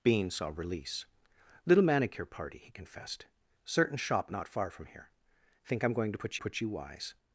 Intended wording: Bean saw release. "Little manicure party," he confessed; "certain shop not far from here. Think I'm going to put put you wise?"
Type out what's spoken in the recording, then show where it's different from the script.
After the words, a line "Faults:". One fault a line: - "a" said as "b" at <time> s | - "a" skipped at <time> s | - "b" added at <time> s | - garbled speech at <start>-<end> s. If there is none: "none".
Bean saw release. "Little manicure party," he confessed; "certain shop not far from here. Think I'm going to put put you wise?"
Faults:
none